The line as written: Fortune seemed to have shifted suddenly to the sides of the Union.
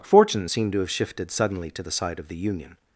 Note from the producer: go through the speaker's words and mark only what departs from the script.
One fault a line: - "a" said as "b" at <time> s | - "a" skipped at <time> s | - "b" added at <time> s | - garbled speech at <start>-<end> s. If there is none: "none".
- "sides" said as "side" at 1.9 s